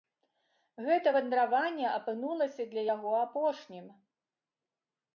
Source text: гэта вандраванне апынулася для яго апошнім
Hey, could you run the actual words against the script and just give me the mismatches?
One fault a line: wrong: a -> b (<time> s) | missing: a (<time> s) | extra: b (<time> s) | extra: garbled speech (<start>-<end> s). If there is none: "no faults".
no faults